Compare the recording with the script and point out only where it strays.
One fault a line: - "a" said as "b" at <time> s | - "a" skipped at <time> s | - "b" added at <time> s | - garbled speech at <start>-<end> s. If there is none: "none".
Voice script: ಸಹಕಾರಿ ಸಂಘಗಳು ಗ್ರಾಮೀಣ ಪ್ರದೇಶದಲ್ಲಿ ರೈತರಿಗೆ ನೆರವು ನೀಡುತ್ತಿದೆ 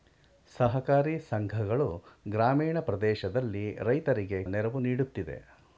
none